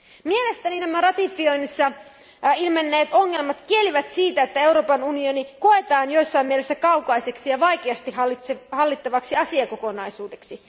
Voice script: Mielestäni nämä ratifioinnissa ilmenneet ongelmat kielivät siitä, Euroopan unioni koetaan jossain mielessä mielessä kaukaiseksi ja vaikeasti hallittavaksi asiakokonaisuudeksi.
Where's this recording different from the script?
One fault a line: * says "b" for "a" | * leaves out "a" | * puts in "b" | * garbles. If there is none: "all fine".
* puts in "että"
* leaves out "mielessä"